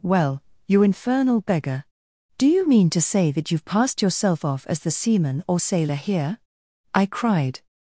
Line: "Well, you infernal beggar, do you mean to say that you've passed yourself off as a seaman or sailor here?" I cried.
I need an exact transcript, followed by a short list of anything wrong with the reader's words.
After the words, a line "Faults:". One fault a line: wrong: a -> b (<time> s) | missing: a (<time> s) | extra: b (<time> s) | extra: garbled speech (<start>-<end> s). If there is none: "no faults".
"Well, you infernal beggar, do you mean to say that you've passed yourself off as the seaman or sailor here?" I cried.
Faults:
wrong: a -> the (4.8 s)